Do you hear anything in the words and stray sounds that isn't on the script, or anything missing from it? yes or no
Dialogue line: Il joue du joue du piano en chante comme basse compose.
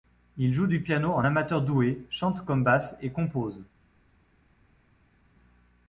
yes